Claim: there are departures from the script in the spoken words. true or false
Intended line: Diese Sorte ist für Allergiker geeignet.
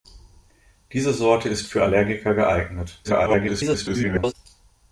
true